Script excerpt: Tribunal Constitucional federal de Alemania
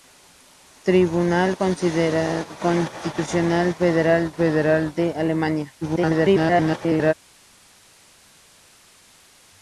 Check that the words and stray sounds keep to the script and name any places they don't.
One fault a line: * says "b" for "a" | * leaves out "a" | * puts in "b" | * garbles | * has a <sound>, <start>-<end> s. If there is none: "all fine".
* puts in "federal"
* garbles